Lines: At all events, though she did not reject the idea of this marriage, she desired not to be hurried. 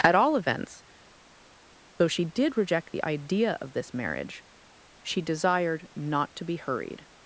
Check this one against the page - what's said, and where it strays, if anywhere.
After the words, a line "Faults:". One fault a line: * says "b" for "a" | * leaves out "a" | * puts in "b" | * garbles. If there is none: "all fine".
At all events, though she did reject the idea of this marriage, she desired not to be hurried.
Faults:
* leaves out "not"